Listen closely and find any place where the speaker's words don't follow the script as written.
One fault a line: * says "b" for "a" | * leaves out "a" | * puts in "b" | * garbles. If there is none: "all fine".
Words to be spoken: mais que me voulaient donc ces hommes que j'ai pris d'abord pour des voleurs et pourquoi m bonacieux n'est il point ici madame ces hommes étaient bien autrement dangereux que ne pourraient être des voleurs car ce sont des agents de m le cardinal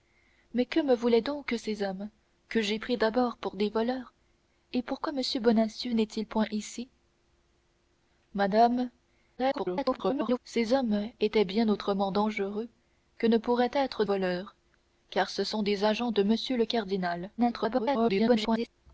* garbles
* leaves out "des"
* garbles